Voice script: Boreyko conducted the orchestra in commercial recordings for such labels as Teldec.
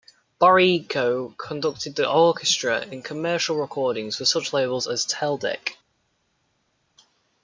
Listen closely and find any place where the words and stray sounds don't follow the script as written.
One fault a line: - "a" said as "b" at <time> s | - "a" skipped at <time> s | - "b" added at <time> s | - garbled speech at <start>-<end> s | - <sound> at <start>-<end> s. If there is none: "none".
none